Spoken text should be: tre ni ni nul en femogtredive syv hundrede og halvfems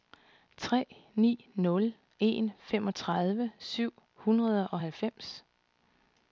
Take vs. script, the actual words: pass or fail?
fail